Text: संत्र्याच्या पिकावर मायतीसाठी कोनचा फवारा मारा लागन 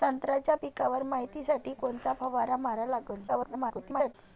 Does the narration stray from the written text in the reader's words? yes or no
yes